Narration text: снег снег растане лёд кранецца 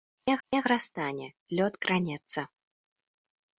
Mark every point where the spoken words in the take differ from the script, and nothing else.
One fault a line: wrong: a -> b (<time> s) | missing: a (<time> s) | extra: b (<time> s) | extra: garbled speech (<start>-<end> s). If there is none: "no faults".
no faults